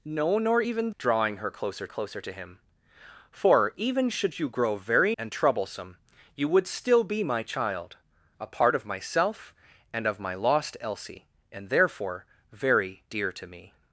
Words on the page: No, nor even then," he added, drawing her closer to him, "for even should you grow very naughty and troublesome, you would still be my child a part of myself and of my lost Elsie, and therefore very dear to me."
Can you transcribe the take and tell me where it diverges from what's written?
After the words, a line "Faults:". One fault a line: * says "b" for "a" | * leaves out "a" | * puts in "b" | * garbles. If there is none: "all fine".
No, nor even drawing her closer closer to him, "for even should you grow very and troublesome, you would still be my child a part of myself and of my lost Elsie, and therefore very dear to me."
Faults:
* leaves out "then he added"
* puts in "closer"
* leaves out "naughty"